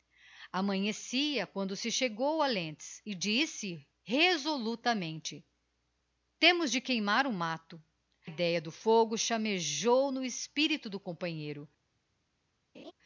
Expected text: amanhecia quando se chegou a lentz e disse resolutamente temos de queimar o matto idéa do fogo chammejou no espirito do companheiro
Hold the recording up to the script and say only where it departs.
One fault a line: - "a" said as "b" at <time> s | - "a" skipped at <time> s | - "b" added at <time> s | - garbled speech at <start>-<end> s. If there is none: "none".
none